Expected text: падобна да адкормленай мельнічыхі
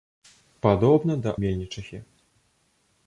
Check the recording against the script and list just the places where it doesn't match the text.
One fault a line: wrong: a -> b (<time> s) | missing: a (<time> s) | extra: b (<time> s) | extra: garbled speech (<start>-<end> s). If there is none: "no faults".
missing: адкормленай (1.3 s)